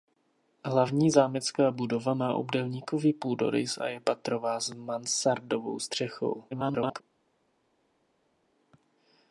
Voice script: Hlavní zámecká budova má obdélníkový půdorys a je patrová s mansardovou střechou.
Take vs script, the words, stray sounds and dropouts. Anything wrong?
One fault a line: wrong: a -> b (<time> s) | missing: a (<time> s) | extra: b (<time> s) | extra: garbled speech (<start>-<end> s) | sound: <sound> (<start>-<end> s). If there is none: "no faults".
extra: garbled speech (6.5-7.0 s)